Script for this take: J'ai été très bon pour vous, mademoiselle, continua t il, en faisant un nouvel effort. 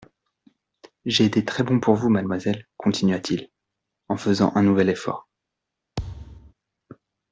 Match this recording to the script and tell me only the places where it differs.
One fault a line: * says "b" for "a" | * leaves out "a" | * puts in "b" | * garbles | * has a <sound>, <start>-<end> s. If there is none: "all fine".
* has a thud, 6.0-6.5 s